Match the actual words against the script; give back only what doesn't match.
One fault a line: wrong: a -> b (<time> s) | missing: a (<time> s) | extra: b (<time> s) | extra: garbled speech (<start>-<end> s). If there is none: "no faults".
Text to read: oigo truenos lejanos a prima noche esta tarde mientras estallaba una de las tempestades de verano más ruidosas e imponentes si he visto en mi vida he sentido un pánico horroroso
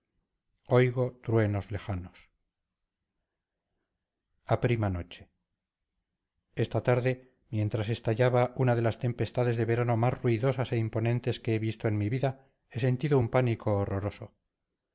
wrong: si -> que (11.4 s)